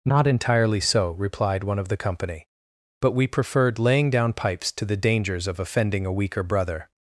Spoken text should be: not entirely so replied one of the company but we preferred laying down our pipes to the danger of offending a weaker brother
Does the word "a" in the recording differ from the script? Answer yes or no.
no